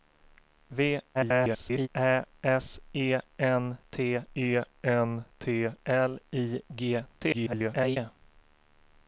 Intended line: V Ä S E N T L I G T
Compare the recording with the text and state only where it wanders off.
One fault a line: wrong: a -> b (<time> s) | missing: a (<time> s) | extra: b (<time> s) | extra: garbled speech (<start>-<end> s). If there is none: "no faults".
extra: garbled speech (1.1-1.9 s)
extra: E N T (4.4 s)
extra: garbled speech (7.3-8.0 s)